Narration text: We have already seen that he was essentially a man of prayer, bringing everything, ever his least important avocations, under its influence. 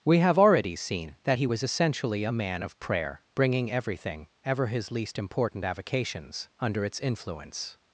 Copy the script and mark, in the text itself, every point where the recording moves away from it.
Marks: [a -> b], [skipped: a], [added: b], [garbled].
We have already seen that he was essentially a man of prayer, bringing everything, ever his least important avocations, under its influence.